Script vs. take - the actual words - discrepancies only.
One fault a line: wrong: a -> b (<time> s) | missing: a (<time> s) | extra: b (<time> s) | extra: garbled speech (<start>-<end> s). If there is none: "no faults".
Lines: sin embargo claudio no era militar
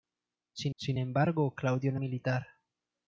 extra: sin (0.8 s)
missing: era (2.0 s)